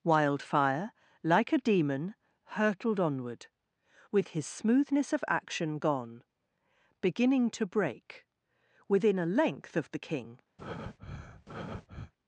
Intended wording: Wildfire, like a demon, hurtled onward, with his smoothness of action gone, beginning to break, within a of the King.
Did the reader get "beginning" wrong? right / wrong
right